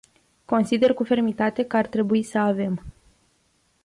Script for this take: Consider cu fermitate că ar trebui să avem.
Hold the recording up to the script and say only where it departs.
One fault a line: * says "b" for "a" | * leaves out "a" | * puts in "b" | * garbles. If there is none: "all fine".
all fine